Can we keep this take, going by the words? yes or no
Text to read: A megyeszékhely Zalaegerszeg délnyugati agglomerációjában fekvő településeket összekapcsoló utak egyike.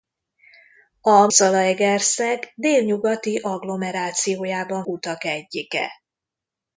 no